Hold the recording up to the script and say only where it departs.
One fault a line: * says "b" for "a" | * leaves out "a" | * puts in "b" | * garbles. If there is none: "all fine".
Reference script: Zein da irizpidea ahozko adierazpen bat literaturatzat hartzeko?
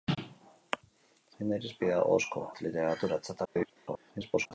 * leaves out "adierazpen"
* garbles